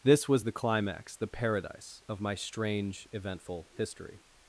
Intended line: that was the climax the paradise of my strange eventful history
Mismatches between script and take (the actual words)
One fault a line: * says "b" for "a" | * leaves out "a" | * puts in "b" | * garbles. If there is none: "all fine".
* says "this" for "that"